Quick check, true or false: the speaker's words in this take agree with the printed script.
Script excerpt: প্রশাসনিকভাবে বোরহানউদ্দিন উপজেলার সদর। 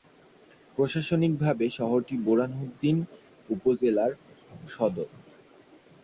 false